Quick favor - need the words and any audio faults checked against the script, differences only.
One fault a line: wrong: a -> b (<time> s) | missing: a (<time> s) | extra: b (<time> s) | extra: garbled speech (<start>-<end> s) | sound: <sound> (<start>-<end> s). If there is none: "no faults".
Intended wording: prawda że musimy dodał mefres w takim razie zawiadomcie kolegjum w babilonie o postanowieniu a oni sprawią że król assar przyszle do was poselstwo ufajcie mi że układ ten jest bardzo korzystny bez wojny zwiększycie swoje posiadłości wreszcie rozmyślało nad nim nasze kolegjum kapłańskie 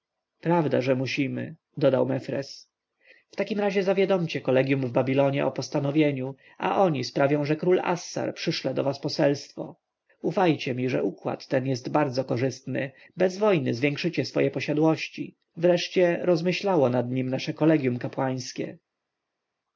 no faults